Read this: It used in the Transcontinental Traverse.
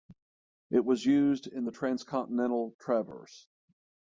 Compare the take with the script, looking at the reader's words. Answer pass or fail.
fail